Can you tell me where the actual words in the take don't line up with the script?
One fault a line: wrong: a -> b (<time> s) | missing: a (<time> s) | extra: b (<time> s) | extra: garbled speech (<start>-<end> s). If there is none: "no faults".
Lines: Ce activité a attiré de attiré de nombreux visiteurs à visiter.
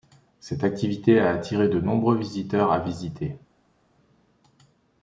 wrong: Ce -> Cette (0.4 s)
missing: attiré de (1.8 s)